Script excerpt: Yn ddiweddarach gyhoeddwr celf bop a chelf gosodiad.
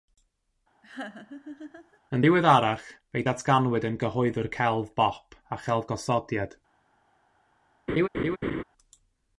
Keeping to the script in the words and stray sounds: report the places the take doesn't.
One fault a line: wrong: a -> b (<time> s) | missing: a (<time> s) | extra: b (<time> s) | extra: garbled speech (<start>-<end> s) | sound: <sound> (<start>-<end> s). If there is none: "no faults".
sound: laugh (0.8-2.0 s)
extra: fe'i datganwyd yn (3.1 s)
sound: laugh (7.9-8.6 s)